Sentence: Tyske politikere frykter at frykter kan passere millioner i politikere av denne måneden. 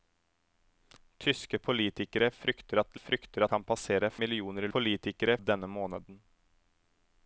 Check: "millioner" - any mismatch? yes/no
no